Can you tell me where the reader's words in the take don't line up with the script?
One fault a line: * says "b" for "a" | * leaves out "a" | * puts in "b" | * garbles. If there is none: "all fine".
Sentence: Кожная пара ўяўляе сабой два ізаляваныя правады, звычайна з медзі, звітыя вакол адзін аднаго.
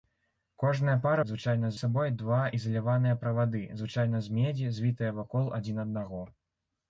* says "звычайна" for "ўяўляе"